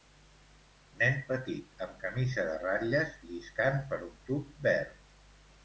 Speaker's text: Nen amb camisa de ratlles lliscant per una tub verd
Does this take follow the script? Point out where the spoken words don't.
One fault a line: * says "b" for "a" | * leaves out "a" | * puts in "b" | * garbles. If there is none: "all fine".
* puts in "petit"
* says "un" for "una"